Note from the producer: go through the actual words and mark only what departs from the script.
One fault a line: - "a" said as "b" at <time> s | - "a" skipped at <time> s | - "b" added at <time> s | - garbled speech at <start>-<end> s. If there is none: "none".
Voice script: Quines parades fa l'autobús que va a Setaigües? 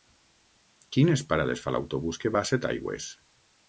none